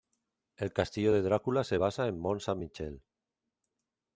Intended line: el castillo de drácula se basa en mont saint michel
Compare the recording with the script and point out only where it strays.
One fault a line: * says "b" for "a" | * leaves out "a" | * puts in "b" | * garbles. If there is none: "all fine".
all fine